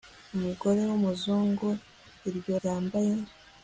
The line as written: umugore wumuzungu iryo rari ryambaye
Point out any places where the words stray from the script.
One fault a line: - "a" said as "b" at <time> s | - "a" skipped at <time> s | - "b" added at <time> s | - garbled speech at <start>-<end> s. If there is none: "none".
- "rari" skipped at 2.5 s